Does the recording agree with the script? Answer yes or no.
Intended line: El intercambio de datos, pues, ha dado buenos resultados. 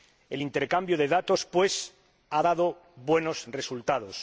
yes